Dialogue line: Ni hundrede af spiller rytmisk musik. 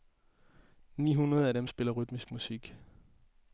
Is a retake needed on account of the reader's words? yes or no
yes